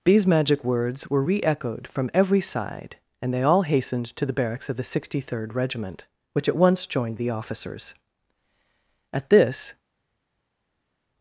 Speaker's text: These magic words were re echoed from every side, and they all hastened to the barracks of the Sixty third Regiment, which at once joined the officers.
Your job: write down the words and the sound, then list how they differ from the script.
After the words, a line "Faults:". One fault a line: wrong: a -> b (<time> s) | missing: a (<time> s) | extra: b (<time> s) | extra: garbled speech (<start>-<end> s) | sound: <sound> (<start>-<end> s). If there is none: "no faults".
These magic words were re echoed from every side, and they all hastened to the barracks of the Sixty third Regiment, which at once joined the officers. At this
Faults:
extra: At this (9.1 s)